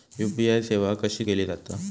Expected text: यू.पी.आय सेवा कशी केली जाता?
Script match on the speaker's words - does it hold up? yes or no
yes